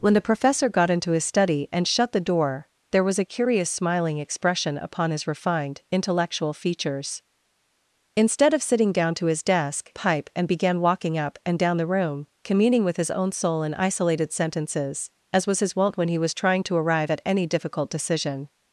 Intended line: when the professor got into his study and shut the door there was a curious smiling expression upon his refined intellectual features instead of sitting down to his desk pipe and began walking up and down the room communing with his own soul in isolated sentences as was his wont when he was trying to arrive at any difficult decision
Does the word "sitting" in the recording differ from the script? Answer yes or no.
no